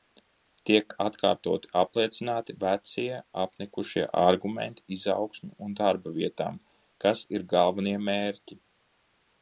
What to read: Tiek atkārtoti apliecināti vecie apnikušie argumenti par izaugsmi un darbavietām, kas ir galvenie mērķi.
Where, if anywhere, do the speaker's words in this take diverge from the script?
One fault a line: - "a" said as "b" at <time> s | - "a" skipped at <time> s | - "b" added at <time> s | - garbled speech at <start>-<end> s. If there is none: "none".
- "par" skipped at 4.8 s